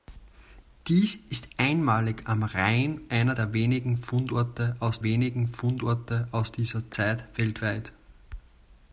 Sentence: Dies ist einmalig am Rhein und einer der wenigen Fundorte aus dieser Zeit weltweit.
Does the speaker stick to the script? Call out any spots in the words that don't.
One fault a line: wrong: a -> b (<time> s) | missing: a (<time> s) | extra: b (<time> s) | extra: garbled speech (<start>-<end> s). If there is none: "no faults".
missing: und (3.0 s)
extra: wenigen Fundorte aus (5.0 s)